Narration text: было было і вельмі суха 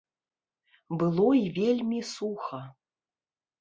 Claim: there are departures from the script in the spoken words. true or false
true